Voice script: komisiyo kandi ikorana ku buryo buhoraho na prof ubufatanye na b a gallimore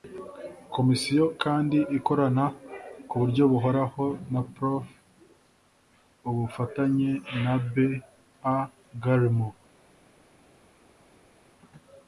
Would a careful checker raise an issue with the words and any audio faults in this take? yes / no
no